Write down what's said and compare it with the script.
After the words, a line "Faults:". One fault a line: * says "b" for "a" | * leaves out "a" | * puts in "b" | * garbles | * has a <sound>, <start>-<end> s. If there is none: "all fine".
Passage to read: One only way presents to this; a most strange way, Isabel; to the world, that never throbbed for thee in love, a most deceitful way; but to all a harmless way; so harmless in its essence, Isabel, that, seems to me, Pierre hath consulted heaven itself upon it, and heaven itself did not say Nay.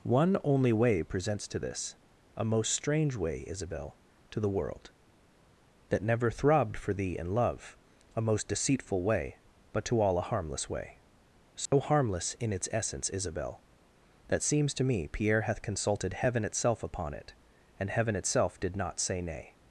One only way presents to this; a most strange way, Isabel; to the world, that never throbbed for thee in love, a most deceitful way; but to all a harmless way; so harmless in its essence, Isabel, that, seems to me, Pierre hath consulted heaven itself upon it, and heaven itself did not say Nay.
Faults:
* has a dropout, 11.7-11.7 s